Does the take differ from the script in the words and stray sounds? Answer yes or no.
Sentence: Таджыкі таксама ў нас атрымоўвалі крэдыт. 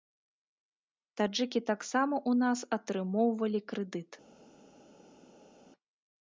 no